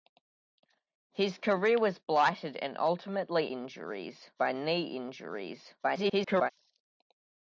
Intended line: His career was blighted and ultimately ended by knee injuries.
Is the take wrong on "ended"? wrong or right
wrong